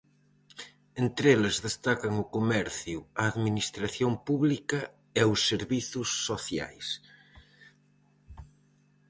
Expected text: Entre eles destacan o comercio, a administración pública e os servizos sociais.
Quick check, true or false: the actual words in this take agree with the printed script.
true